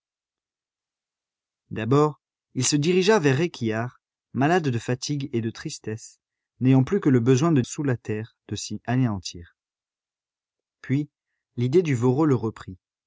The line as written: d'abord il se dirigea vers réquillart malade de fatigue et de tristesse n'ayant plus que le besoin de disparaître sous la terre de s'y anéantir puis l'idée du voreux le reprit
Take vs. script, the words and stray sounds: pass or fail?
fail